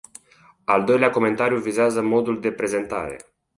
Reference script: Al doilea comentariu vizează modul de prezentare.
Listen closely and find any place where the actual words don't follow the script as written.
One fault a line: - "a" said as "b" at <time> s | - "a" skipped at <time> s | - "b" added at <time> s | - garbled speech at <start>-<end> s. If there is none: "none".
none